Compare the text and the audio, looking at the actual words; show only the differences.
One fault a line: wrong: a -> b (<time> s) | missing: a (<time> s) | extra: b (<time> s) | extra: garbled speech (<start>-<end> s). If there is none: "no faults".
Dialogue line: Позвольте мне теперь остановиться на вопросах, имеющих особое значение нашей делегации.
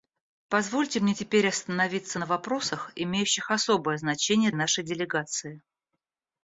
no faults